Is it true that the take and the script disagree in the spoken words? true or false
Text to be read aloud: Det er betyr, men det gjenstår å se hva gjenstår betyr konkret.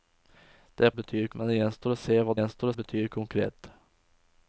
false